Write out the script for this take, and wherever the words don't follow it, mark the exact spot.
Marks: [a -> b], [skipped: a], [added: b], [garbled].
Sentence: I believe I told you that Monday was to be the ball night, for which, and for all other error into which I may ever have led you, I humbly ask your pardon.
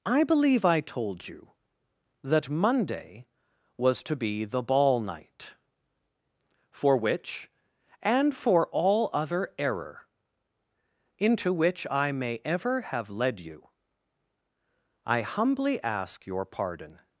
I believe I told you that Monday was to be the ball night, for which, and for all other error into which I may ever have led you, I humbly ask your pardon.